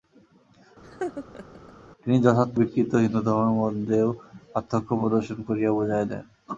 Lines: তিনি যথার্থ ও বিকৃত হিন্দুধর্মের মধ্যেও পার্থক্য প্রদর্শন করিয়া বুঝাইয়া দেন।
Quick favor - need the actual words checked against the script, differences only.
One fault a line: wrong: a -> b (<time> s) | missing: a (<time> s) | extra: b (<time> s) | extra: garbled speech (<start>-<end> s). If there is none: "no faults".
missing: ও (2.6 s)